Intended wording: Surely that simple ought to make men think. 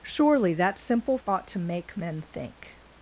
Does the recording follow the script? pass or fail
pass